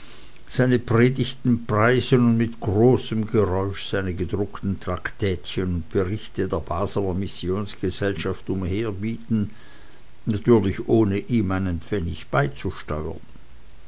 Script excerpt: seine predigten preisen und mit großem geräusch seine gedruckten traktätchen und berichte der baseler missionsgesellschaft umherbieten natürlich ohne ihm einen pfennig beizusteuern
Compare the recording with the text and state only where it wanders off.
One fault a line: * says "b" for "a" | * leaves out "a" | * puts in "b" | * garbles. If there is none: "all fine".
all fine